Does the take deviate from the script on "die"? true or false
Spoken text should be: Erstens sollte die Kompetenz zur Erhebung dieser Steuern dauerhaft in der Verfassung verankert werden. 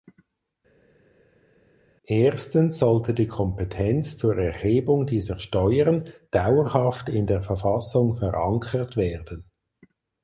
false